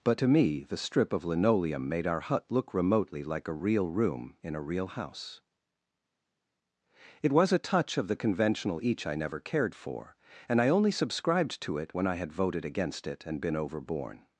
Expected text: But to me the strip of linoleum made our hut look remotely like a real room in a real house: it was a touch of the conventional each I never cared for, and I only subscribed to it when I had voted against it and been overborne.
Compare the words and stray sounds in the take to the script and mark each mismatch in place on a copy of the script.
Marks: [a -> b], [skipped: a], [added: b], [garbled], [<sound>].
But to me the strip of linoleum made our hut look remotely like a real room in a real house: it was a touch of the conventional each I never cared for, and I only subscribed to it when I had voted against it and been overborne.